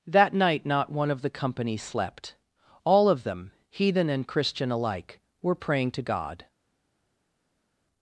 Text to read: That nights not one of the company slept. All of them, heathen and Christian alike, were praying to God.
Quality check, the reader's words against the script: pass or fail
fail